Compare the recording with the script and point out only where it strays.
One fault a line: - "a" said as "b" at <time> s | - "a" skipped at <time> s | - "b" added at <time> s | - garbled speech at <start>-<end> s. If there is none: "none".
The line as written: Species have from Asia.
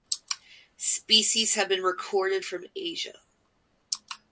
- "been recorded" added at 1.7 s